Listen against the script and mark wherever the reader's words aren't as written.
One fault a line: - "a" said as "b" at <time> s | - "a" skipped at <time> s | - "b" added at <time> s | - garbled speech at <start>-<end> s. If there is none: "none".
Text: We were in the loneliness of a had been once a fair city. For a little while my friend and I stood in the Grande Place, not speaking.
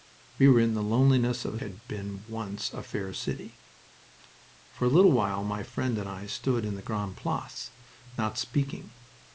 none